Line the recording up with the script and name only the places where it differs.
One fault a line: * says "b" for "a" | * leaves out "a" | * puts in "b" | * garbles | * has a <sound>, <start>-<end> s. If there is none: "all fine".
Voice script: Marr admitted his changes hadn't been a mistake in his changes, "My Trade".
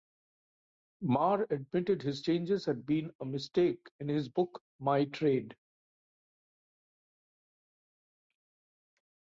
* says "had" for "hadn't"
* says "book" for "changes"